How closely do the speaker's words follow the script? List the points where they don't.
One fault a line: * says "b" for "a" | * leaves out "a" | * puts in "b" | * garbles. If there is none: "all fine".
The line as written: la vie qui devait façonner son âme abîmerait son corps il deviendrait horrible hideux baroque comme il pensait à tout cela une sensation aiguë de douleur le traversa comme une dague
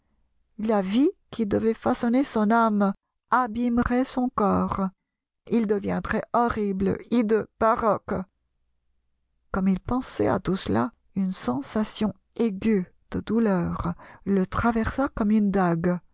all fine